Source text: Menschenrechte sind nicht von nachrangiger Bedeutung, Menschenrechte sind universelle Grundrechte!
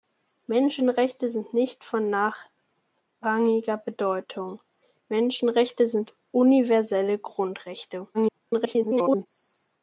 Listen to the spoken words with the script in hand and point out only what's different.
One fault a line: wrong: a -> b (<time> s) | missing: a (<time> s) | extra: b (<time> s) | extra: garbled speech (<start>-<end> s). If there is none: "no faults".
extra: garbled speech (8.1-9.3 s)